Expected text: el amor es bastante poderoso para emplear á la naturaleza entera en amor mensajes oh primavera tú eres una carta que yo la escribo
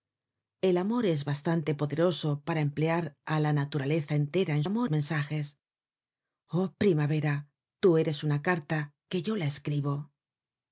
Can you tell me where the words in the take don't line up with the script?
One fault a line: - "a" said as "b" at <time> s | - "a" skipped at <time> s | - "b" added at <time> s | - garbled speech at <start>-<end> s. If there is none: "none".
none